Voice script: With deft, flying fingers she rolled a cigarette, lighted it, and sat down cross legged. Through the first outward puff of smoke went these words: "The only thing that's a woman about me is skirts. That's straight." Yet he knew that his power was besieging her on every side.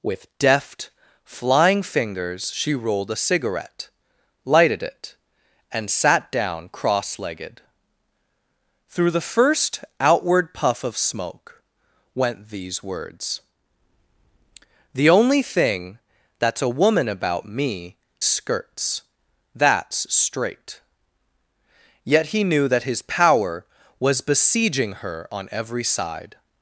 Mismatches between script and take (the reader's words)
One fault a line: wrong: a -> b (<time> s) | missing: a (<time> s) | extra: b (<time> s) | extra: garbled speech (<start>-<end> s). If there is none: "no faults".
missing: is (18.0 s)